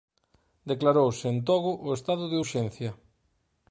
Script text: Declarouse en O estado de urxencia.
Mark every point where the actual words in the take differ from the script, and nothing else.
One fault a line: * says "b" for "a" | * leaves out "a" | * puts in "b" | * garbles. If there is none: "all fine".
* puts in "Togo"